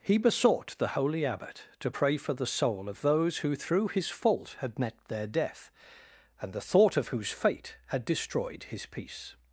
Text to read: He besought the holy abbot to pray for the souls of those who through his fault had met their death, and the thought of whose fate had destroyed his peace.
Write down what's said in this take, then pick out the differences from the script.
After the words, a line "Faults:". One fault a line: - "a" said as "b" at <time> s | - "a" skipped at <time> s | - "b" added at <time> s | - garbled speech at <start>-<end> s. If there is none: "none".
He besought the holy abbot to pray for the soul of those who through his fault had met their death, and the thought of whose fate had destroyed his peace.
Faults:
- "souls" said as "soul" at 2.5 s